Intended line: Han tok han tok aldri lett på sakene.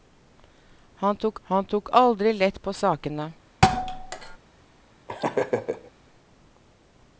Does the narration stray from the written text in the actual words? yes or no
no